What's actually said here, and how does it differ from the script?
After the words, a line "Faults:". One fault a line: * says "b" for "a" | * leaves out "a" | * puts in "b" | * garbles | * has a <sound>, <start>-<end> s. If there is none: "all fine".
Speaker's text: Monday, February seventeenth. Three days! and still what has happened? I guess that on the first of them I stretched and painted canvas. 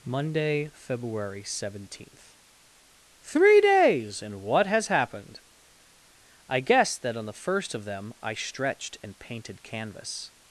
Monday, February seventeenth. Three days! and what has happened? I guess that on the first of them I stretched and painted canvas.
Faults:
* leaves out "still"